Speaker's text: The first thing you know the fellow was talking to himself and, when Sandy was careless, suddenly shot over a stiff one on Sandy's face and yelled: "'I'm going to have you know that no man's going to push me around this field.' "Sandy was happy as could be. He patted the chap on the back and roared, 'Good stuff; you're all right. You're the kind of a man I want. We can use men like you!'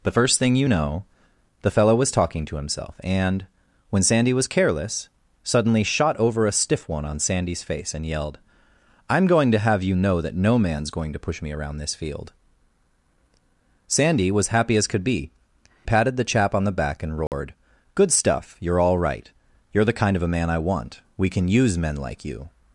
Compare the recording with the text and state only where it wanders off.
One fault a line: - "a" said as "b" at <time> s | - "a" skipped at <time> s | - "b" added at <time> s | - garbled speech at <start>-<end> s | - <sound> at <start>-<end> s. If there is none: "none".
- "He" skipped at 15.3 s
- dropout at 17.3-17.3 s